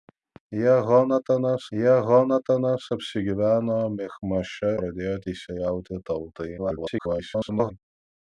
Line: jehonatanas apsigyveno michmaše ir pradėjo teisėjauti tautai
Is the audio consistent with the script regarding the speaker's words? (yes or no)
no